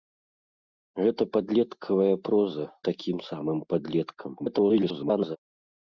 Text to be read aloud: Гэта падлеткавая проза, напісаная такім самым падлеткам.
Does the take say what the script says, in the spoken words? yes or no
no